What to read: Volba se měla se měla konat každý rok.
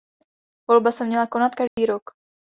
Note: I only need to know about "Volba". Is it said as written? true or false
true